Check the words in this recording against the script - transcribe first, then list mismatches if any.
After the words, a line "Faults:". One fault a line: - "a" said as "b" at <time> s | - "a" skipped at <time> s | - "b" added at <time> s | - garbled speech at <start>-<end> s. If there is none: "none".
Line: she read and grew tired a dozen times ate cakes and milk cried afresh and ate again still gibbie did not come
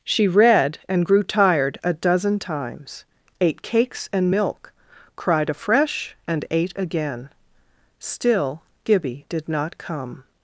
she read and grew tired a dozen times ate cakes and milk cried afresh and ate again still gibbie did not come
Faults:
none